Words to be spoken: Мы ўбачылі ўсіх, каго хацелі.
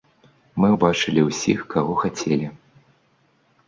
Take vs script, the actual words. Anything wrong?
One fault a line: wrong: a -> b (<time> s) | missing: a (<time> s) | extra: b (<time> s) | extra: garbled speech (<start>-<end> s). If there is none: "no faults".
no faults